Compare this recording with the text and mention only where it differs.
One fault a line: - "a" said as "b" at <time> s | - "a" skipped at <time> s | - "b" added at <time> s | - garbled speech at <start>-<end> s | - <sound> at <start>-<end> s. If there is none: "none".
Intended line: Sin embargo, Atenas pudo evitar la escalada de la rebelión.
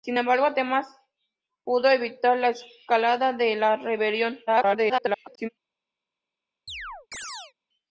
- garbled speech at 4.5-5.5 s
- chirp at 6.7-7.5 s